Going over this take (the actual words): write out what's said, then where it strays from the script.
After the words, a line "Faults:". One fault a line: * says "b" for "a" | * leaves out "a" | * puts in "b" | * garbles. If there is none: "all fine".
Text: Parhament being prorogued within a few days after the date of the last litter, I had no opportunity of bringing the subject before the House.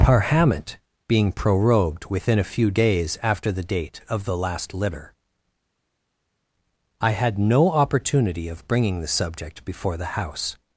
Parhament being prorogued within a few days after the date of the last litter, I had no opportunity of bringing the subject before the House.
Faults:
all fine